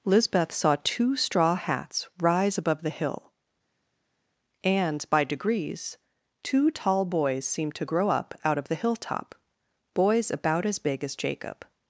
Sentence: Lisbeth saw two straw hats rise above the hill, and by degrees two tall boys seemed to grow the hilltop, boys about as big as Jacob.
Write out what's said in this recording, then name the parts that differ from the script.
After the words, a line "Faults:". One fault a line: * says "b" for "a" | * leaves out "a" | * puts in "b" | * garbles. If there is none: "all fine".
Lisbeth saw two straw hats rise above the hill, and by degrees two tall boys seemed to grow up out of the hilltop, boys about as big as Jacob.
Faults:
* puts in "up out of"